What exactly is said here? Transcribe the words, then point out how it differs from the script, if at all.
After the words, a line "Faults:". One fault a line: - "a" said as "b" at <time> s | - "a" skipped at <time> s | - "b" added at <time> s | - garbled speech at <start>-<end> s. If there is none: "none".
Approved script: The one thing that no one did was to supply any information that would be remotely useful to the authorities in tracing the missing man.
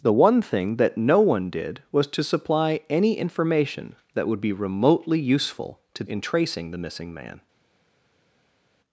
The one thing that no one did was to supply any information that would be remotely useful to in tracing the missing man.
Faults:
- "the authorities" skipped at 6.0 s